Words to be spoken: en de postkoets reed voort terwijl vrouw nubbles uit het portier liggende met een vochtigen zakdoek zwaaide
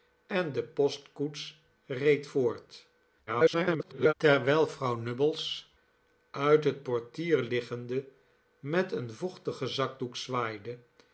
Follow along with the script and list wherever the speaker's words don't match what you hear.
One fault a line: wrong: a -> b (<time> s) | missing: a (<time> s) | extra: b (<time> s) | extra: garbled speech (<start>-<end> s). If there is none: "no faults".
extra: garbled speech (3.3-4.1 s)